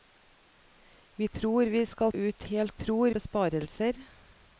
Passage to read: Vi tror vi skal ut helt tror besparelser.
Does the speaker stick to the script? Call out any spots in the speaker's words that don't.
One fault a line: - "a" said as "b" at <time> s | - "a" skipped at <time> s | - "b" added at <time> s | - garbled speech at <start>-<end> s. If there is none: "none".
none